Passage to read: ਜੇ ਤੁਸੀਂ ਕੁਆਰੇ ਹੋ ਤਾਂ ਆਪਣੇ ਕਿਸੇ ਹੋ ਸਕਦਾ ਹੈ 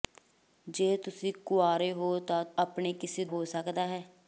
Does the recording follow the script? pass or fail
pass